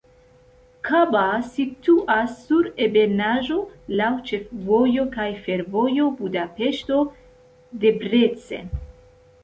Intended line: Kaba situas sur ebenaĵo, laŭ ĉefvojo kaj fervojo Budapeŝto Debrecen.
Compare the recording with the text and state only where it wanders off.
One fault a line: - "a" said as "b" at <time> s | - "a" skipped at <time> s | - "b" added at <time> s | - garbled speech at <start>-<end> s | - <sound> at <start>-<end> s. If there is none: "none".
none